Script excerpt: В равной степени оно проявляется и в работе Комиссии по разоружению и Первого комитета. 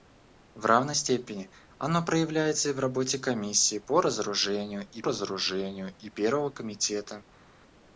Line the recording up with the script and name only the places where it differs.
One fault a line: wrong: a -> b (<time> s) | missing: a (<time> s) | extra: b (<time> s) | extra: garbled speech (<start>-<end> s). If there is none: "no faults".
extra: разоружению и (5.0 s)